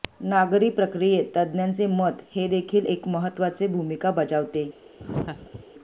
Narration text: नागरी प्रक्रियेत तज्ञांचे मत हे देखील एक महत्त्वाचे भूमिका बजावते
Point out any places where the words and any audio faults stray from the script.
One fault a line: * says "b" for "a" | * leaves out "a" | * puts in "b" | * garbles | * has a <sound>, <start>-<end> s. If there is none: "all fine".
* has a laugh, 5.0-5.7 s